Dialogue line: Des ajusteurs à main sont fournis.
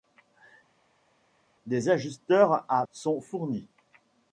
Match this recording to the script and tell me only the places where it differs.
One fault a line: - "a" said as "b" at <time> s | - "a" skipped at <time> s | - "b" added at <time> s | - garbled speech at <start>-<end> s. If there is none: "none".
- "main" skipped at 2.9 s